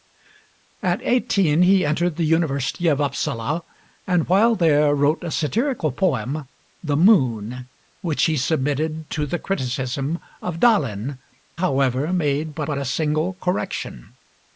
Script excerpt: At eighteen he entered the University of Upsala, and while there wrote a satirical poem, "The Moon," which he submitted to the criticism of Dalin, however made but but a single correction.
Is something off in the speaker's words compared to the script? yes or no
no